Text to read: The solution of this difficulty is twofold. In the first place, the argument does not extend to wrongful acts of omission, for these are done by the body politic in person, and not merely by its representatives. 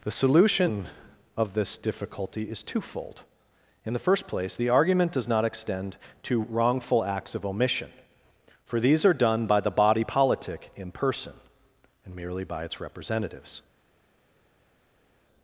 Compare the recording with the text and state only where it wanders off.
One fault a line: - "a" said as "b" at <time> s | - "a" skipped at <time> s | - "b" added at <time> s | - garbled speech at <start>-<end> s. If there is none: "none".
- "not" skipped at 12.1 s